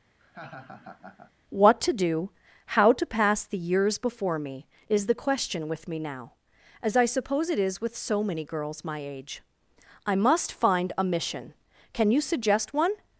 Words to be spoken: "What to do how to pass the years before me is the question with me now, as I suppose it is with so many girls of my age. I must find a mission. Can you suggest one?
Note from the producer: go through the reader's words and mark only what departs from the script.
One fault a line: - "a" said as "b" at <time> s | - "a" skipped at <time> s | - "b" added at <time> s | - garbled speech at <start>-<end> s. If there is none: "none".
- "of" skipped at 8.8 s